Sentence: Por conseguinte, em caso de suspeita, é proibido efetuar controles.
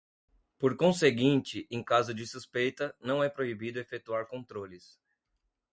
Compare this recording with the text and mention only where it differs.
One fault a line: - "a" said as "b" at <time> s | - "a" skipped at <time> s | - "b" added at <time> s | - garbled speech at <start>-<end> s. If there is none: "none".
- "não" added at 3.0 s